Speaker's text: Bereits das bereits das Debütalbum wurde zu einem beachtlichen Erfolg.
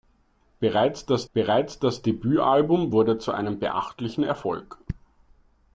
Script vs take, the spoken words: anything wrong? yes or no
no